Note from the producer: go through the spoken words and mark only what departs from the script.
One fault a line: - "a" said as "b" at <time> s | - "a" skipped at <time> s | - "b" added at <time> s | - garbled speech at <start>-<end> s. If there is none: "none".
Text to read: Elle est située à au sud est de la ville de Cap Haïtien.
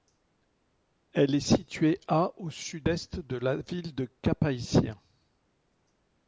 none